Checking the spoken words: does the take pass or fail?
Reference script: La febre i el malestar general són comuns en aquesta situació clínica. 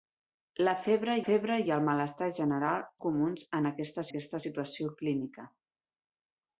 fail